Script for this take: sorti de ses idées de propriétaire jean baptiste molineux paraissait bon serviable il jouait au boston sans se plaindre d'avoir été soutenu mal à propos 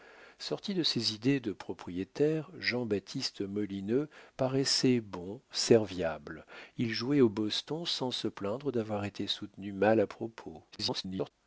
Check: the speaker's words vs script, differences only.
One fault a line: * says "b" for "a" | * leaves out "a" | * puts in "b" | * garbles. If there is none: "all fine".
* garbles